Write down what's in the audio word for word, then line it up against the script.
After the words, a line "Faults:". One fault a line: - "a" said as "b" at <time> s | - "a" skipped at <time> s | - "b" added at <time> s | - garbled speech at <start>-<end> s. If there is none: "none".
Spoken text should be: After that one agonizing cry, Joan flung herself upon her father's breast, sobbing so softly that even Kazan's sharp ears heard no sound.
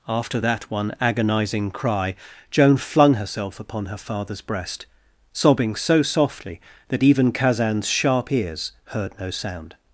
After that one agonizing cry, Joan flung herself upon her father's breast, sobbing so softly that even Kazan's sharp ears heard no sound.
Faults:
none